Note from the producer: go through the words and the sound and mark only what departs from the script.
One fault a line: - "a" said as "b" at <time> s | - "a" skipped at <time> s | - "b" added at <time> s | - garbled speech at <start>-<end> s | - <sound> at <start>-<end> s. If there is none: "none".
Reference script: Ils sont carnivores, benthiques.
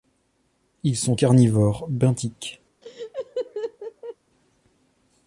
- laugh at 2.8-4.2 s